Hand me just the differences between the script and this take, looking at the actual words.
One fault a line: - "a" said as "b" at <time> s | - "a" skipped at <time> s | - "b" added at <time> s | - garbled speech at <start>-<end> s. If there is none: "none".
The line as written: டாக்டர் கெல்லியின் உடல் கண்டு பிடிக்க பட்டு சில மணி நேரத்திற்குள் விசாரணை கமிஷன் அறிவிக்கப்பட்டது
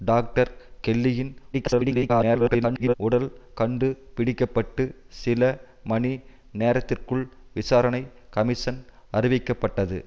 - garbled speech at 1.5-2.9 s